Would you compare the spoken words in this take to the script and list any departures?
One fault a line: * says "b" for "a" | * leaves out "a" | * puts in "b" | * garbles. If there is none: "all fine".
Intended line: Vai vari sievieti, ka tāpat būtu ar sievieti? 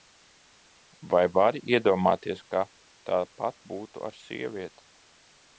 * says "iedomāties" for "sievieti"